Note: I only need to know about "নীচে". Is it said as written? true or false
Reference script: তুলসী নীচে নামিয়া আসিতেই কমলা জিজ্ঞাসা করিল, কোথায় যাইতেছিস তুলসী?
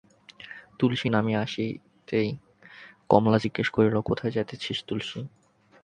false